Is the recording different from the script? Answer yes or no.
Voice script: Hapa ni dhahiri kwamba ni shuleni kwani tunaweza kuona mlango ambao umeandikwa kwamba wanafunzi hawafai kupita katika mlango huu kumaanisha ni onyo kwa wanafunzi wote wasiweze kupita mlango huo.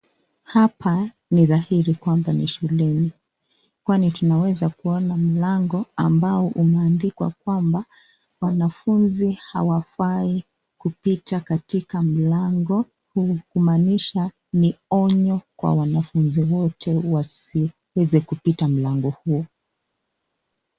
no